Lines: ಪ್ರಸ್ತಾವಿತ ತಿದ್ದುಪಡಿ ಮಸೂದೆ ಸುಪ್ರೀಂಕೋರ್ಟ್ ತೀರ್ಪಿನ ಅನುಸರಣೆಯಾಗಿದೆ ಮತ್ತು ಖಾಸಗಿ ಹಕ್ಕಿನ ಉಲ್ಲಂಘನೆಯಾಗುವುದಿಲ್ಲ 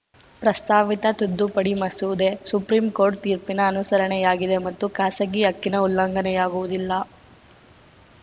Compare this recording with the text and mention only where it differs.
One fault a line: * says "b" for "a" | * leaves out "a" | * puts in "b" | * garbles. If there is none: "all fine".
all fine